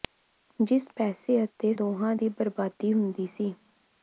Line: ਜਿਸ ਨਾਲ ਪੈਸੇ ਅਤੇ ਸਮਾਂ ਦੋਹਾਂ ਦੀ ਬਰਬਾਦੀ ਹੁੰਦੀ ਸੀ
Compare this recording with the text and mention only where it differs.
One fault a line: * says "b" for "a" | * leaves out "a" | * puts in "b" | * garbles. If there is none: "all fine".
* leaves out "ਨਾਲ"
* leaves out "ਸਮਾਂ"